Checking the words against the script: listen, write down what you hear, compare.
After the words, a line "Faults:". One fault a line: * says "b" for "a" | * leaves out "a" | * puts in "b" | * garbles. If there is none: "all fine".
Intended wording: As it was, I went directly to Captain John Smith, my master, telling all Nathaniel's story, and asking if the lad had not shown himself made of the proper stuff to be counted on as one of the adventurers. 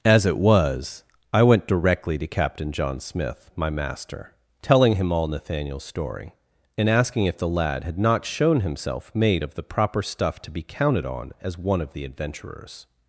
As it was, I went directly to Captain John Smith, my master, telling him all Nathaniel's story, and asking if the lad had not shown himself made of the proper stuff to be counted on as one of the adventurers.
Faults:
* puts in "him"